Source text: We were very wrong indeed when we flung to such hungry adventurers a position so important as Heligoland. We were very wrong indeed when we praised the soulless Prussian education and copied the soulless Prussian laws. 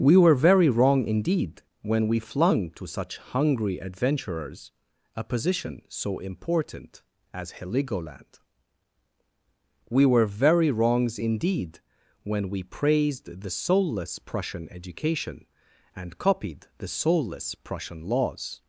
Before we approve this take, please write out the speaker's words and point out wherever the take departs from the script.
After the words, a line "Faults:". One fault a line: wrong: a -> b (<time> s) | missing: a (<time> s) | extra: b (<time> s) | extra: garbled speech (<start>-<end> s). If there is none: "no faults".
We were very wrong indeed when we flung to such hungry adventurers a position so important as Heligoland. We were very wrongs indeed when we praised the soulless Prussian education and copied the soulless Prussian laws.
Faults:
wrong: wrong -> wrongs (10.7 s)